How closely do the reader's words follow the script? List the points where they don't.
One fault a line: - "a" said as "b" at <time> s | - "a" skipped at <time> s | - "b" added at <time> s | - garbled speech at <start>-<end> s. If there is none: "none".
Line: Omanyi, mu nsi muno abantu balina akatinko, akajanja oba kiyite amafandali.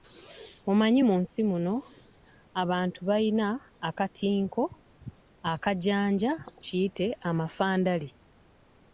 - "oba" skipped at 6.3 s